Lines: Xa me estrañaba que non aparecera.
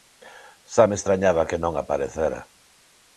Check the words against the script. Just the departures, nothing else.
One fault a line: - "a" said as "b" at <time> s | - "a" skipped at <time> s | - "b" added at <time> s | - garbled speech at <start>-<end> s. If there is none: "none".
none